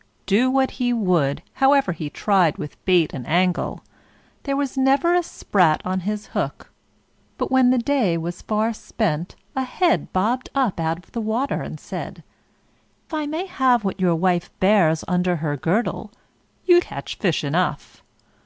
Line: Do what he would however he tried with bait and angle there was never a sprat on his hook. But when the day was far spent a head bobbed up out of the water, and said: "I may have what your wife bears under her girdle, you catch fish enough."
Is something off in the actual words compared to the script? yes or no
no